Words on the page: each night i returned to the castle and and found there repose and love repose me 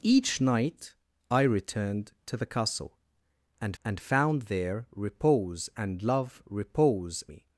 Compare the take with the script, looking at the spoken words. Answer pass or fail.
pass